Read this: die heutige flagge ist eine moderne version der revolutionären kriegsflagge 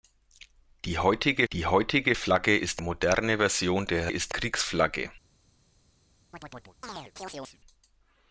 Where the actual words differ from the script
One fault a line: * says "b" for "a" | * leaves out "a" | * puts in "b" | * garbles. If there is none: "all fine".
* puts in "die heutige"
* leaves out "eine"
* says "ist" for "revolutionären"